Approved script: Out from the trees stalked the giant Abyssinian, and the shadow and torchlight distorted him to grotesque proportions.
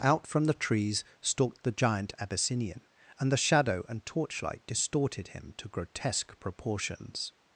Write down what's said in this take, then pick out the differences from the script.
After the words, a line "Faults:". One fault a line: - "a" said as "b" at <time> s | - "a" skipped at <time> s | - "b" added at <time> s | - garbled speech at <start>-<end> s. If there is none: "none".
Out from the trees stalked the giant Abyssinian, and the shadow and torchlight distorted him to grotesque proportions.
Faults:
none